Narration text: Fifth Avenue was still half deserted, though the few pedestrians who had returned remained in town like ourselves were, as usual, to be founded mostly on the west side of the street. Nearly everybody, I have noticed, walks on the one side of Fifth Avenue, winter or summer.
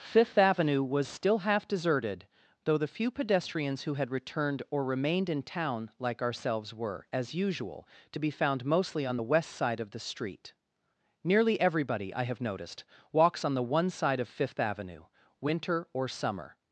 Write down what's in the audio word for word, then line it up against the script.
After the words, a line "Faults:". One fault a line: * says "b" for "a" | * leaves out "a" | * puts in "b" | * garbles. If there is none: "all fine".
Fifth Avenue was still half deserted, though the few pedestrians who had returned or remained in town like ourselves were, as usual, to be found mostly on the west side of the street. Nearly everybody, I have noticed, walks on the one side of Fifth Avenue, winter or summer.
Faults:
* puts in "or"
* says "found" for "founded"